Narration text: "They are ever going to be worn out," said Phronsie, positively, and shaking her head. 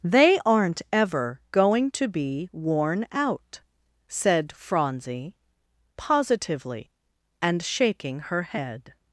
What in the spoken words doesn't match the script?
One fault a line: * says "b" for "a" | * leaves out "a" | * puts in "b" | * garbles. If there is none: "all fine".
* says "aren't" for "are"